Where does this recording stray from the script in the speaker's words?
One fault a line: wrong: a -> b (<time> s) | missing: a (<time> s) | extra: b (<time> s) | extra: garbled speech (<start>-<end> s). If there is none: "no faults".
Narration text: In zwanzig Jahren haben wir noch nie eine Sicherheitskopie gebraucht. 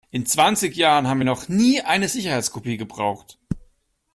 no faults